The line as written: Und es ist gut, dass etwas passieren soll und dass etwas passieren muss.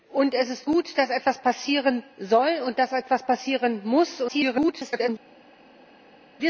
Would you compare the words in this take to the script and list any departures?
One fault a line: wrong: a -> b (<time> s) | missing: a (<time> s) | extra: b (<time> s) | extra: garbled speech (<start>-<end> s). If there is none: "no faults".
extra: garbled speech (4.3-5.1 s)